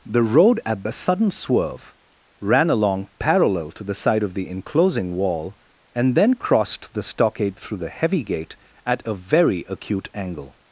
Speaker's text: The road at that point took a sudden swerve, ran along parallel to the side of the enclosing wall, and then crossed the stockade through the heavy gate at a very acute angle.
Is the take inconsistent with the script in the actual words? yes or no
yes